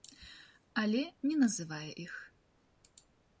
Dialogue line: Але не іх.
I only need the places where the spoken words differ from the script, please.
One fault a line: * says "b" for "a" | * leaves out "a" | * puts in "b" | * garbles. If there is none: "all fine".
* puts in "называе"